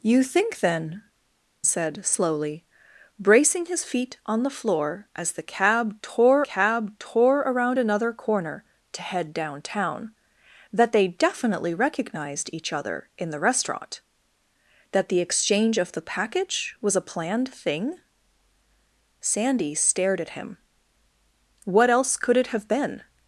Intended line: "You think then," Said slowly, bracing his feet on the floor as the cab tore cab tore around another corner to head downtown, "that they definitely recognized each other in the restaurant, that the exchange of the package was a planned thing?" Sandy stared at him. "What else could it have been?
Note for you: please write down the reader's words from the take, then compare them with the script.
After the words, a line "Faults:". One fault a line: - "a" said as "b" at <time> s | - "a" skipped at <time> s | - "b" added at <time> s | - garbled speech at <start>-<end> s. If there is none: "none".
"You think then," Said slowly, bracing his feet on the floor as the cab tore cab tore around another corner to head downtown, "that they definitely recognized each other in the restaurant, that the exchange of the package was a planned thing?" Sandy stared at him. "What else could it have been?
Faults:
none